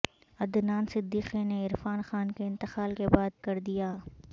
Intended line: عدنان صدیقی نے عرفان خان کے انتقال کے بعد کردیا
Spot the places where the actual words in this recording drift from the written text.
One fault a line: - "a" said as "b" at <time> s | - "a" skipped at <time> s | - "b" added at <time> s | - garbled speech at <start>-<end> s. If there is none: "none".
none